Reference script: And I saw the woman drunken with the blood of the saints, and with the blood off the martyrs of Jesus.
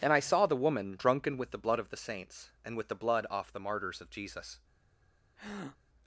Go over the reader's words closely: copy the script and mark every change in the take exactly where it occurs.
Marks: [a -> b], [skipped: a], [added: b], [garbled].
And I saw the woman drunken with the blood of the saints, and with the blood off the martyrs of Jesus.